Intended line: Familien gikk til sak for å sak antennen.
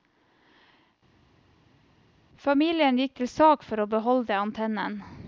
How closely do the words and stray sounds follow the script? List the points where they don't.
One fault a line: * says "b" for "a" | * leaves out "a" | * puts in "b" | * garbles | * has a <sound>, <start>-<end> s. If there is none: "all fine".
* says "beholde" for "sak"